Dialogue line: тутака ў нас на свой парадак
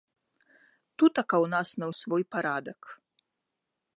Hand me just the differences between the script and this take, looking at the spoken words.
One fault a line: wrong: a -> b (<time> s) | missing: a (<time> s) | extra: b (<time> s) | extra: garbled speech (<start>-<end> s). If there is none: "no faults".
no faults